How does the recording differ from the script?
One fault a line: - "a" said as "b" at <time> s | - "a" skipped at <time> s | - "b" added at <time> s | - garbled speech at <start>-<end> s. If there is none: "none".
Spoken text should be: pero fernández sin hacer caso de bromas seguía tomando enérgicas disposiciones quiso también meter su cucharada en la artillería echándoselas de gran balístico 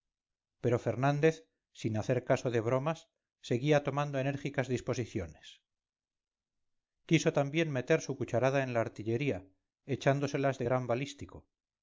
none